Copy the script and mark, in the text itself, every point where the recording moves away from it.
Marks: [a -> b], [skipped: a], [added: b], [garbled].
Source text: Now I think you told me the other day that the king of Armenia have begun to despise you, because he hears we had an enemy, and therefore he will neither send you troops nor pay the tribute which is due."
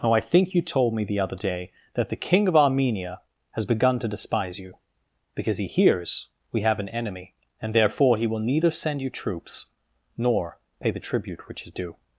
Now I think you told me the other day that the king of Armenia [have -> has] begun to despise you, because he hears we [had -> have] an enemy, and therefore he will neither send you troops nor pay the tribute which is due."